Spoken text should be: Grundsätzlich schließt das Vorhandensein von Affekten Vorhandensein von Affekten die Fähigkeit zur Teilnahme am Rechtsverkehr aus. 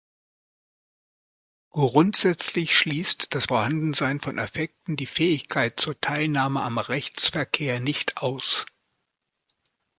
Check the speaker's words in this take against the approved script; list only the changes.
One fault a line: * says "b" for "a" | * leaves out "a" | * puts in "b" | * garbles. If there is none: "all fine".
* leaves out "Vorhandensein von Affekten"
* puts in "nicht"